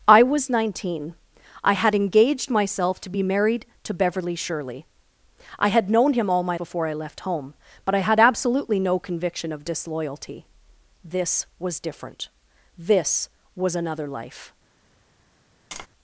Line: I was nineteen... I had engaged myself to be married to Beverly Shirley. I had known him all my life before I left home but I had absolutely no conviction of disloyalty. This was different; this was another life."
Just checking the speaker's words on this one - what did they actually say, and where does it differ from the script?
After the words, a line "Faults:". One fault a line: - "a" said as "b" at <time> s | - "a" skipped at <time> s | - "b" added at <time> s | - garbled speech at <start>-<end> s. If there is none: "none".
I was nineteen... I had engaged myself to be married to Beverly Shirley. I had known him all my before I left home but I had absolutely no conviction of disloyalty. This was different; this was another life."
Faults:
- "life" skipped at 6.6 s